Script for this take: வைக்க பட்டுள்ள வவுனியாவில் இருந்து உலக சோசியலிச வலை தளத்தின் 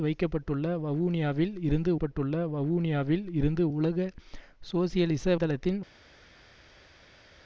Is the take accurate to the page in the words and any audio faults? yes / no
no